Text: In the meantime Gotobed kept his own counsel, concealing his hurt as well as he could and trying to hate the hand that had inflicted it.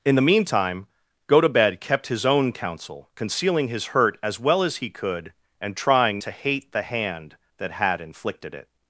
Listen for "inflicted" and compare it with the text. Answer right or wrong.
right